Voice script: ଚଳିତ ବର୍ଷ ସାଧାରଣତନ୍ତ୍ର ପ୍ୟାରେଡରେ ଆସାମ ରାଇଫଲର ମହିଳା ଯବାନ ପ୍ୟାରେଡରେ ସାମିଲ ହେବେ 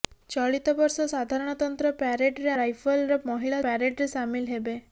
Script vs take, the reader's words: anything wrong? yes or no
yes